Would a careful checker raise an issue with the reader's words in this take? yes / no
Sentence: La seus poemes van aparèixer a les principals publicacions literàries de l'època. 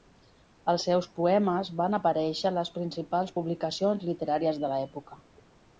yes